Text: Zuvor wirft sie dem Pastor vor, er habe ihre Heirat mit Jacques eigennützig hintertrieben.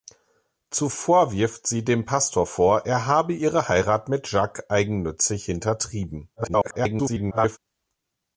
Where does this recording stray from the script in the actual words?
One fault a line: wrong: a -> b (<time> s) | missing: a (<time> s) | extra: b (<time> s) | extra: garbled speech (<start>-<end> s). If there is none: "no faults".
extra: garbled speech (6.4-7.6 s)